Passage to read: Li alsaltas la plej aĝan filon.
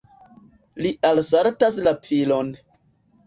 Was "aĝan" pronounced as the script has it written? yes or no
no